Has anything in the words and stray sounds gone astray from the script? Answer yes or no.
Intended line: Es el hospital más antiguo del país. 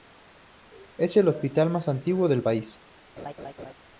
yes